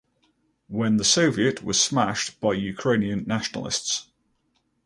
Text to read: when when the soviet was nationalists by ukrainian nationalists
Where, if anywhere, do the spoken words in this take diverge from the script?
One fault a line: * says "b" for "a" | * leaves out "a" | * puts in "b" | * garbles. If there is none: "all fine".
* leaves out "when"
* says "smashed" for "nationalists"